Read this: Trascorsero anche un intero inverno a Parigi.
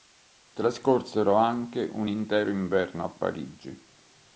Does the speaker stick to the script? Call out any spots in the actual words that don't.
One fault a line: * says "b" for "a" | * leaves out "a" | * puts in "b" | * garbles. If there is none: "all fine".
all fine